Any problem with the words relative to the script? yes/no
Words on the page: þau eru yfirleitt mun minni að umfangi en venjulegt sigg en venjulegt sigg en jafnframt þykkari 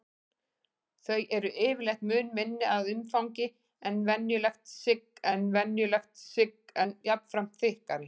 no